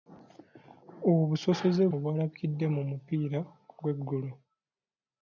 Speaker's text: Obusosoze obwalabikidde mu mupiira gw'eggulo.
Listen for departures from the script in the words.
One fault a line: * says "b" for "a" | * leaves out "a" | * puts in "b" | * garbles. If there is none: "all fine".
all fine